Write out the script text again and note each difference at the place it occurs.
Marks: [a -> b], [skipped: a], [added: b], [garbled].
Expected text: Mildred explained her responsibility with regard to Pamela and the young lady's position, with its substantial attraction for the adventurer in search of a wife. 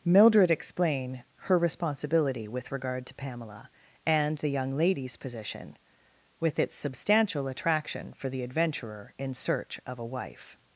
Mildred [explained -> explain] her responsibility with regard to Pamela and the young lady's position, with its substantial attraction for the adventurer in search of a wife.